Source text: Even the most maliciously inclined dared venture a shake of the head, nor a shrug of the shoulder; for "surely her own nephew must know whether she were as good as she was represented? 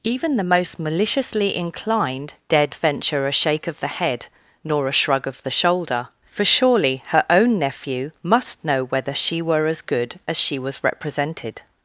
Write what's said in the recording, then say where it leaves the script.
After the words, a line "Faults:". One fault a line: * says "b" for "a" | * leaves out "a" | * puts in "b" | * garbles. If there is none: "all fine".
Even the most maliciously inclined dared venture a shake of the head, nor a shrug of the shoulder; for "surely her own nephew must know whether she were as good as she was represented?
Faults:
all fine